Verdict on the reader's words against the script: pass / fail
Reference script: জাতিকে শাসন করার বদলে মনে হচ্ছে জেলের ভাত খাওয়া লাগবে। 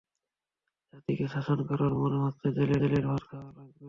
fail